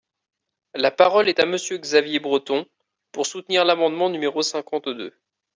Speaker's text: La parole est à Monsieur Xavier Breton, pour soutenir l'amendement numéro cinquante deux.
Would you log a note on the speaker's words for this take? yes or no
no